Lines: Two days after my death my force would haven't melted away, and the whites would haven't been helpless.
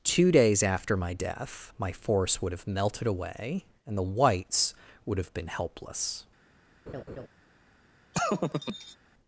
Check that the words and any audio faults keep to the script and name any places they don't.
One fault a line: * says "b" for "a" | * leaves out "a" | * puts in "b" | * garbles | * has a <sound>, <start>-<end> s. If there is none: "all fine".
* says "have" for "haven't"
* says "have" for "haven't"
* has a laugh, 6.9-7.3 s
* has a laugh, 8.1-9.0 s